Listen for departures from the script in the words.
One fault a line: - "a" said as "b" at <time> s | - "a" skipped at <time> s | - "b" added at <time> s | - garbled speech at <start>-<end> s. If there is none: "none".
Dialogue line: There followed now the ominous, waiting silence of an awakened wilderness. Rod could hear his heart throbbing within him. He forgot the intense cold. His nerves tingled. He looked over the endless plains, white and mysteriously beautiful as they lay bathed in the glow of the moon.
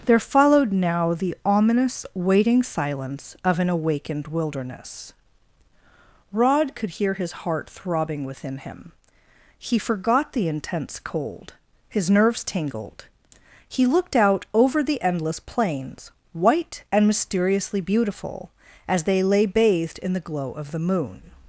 - "out" added at 14.2 s